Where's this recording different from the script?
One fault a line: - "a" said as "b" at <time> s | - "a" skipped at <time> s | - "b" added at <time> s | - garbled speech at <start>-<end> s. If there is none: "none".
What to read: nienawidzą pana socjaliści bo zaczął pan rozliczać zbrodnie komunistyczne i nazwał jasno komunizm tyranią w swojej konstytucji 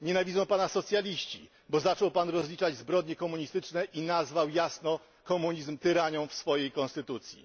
none